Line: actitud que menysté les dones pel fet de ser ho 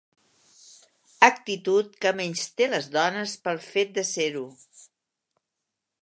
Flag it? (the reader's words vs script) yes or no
no